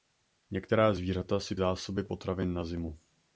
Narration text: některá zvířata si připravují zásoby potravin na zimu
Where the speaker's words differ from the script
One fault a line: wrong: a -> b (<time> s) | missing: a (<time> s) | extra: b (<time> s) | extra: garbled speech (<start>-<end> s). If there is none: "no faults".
missing: připravují (1.6 s)